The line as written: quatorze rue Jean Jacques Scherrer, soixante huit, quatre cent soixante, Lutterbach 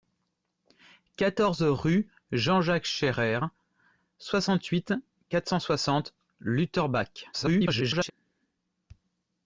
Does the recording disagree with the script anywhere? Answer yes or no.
yes